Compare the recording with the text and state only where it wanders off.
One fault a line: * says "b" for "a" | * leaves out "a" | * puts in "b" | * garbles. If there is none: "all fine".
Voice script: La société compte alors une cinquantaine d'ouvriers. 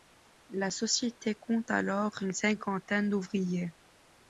all fine